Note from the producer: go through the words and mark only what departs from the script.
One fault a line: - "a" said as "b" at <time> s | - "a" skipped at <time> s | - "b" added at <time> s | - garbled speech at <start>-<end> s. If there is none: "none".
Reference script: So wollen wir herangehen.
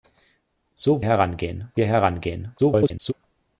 - "wollen" said as "herangehen" at 1.0 s
- garbled speech at 2.6-3.1 s